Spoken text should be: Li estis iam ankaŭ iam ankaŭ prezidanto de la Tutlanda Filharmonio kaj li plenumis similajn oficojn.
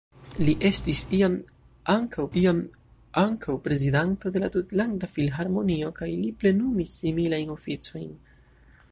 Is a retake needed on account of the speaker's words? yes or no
no